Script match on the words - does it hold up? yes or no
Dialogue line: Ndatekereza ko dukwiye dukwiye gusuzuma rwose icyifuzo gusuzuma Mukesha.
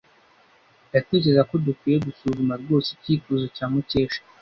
no